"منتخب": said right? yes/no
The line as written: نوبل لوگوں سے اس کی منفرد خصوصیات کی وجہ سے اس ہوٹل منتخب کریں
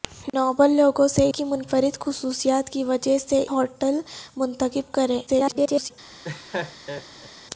yes